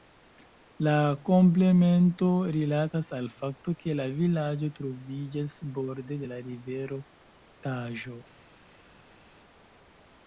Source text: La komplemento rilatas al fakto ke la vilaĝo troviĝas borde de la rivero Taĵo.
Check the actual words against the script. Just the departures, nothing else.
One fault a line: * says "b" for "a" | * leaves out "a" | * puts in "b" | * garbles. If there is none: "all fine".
all fine